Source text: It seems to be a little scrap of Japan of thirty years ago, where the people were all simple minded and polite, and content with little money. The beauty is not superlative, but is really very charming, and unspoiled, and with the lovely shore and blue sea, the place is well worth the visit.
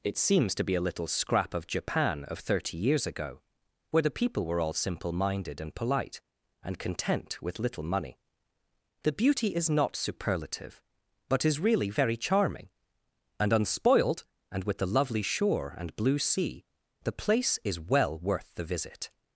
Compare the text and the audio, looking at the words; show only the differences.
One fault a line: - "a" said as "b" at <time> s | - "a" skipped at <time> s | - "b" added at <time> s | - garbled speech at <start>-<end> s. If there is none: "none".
none